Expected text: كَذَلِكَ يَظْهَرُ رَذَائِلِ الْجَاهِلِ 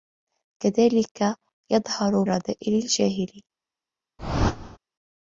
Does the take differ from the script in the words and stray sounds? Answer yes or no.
yes